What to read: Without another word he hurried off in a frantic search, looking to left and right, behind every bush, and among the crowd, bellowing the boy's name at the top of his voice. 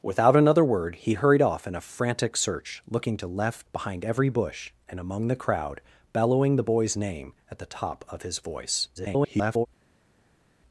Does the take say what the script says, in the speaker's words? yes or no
no